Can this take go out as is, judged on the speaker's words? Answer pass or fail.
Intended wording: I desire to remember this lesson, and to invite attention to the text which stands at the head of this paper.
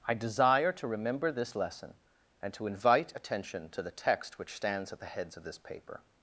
fail